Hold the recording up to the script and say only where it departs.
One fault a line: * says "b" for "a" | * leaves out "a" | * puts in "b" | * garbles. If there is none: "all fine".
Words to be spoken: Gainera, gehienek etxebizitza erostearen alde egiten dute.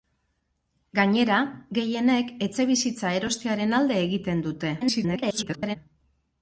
* garbles